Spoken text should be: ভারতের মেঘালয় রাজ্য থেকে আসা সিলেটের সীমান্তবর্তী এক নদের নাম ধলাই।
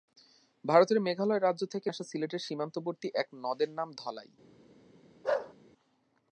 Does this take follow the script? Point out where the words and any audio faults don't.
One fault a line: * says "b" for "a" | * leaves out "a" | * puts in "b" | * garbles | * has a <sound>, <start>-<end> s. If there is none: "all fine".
* has a bark, 5.2-5.5 s